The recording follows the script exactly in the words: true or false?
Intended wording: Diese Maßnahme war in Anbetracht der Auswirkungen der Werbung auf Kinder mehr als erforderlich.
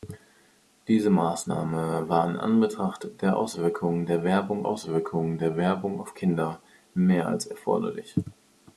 false